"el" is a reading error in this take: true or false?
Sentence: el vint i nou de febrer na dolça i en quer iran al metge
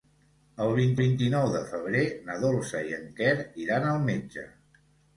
false